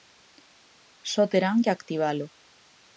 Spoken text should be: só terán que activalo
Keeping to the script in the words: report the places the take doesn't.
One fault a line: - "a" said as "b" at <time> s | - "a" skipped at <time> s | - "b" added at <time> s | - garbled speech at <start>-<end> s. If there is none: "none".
none